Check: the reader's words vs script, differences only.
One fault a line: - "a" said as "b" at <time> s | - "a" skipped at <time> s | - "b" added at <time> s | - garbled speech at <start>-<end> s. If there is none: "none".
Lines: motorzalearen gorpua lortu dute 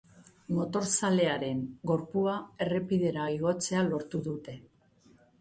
- "errepidera igotzea" added at 2.6 s